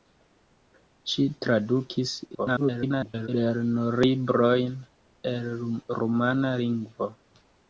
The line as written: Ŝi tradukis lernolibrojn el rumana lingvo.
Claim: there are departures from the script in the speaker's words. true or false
true